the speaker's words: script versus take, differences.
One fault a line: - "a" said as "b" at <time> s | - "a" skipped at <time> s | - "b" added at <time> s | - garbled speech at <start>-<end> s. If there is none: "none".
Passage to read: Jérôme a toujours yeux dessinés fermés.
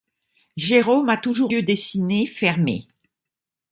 none